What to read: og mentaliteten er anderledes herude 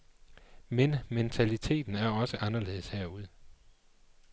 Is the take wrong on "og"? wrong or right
wrong